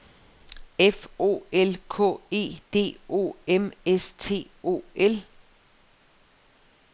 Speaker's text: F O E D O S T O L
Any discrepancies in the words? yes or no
yes